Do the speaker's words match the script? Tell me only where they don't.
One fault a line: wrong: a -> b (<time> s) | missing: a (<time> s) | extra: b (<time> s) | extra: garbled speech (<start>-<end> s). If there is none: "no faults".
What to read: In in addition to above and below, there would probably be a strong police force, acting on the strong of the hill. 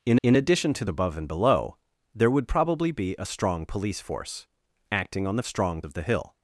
no faults